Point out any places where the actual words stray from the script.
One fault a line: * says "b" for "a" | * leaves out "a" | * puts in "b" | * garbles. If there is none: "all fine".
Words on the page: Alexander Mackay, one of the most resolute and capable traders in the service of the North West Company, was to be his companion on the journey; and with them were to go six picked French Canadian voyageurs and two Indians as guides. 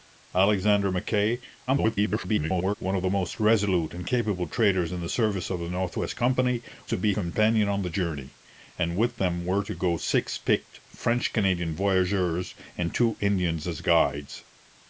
* garbles
* leaves out "was"
* leaves out "his"